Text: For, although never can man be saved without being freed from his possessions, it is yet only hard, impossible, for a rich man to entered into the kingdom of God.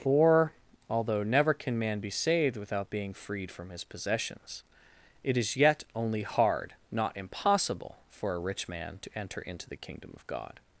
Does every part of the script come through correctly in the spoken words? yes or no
no